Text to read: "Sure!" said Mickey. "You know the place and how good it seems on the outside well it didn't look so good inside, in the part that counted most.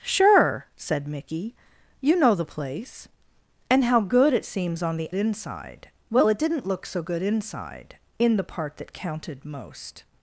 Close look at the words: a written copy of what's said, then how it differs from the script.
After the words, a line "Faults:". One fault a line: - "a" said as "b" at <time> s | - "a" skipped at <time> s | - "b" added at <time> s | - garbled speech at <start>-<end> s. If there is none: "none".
"Sure!" said Mickey. "You know the place and how good it seems on the inside well it didn't look so good inside, in the part that counted most.
Faults:
- "outside" said as "inside" at 5.1 s